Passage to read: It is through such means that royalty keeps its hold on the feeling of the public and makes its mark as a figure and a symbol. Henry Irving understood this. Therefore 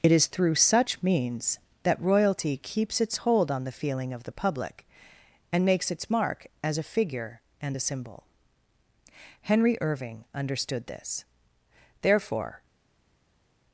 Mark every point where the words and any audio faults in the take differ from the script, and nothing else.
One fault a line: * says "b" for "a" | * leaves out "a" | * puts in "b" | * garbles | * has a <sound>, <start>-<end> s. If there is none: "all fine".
all fine